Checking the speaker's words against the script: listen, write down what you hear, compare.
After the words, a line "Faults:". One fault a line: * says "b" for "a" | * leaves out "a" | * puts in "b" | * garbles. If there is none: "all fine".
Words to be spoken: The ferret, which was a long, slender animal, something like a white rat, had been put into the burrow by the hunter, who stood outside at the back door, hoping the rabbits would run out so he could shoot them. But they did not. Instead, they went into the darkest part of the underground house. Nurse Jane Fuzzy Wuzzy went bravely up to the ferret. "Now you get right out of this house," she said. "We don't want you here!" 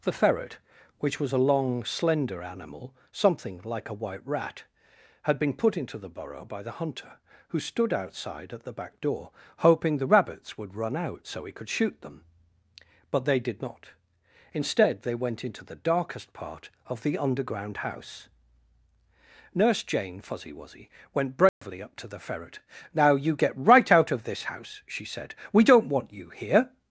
The ferret, which was a long, slender animal, something like a white rat, had been put into the burrow by the hunter, who stood outside at the back door, hoping the rabbits would run out so he could shoot them. But they did not. Instead, they went into the darkest part of the underground house. Nurse Jane Fuzzy Wuzzy went bravely up to the ferret. "Now you get right out of this house," she said. "We don't want you here!"
Faults:
all fine